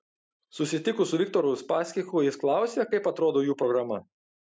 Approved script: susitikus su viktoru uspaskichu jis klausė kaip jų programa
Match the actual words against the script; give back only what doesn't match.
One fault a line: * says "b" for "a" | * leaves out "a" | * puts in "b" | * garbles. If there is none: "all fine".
* puts in "atrodo"